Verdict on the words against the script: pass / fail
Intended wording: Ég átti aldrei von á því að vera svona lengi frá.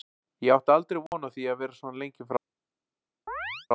pass